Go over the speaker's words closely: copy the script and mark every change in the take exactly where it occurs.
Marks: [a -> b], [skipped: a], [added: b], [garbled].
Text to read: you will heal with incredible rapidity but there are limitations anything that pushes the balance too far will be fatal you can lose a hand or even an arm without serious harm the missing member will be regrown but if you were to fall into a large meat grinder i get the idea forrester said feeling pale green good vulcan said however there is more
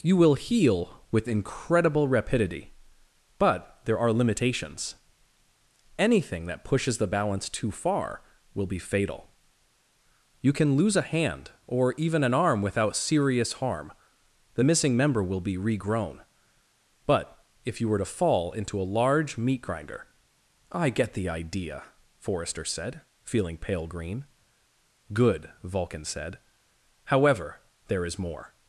you will heal with incredible rapidity but there are limitations anything that pushes the balance too far will be fatal you can lose a hand or even an arm without serious harm the missing member will be regrown but if you were to fall into a large meat grinder i get the idea forrester said feeling pale green good vulcan said however there is more